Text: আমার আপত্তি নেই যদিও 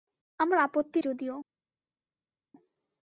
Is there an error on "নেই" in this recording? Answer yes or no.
yes